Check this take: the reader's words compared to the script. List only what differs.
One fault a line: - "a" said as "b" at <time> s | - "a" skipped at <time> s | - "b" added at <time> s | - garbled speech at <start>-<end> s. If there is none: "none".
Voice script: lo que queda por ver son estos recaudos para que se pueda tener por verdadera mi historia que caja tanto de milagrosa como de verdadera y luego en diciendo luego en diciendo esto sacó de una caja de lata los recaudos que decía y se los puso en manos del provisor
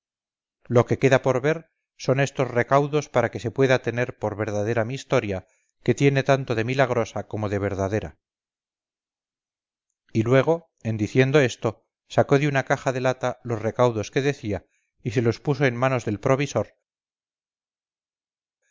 - "caja" said as "tiene" at 6.0 s
- "luego en diciendo" skipped at 11.4 s